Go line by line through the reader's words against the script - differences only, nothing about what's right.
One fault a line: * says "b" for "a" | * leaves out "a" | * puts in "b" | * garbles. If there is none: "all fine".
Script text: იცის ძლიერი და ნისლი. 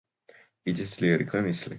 all fine